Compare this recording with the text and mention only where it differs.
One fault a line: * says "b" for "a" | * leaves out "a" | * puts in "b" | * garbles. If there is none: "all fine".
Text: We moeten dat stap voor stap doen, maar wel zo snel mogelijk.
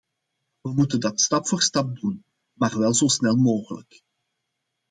all fine